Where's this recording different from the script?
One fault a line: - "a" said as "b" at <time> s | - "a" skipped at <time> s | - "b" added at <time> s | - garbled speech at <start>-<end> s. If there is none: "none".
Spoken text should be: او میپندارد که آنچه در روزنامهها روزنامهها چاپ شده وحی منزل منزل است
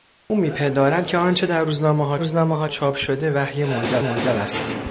none